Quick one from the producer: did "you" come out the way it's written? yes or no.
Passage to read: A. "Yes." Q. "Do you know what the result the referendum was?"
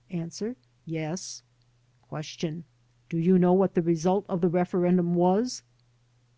yes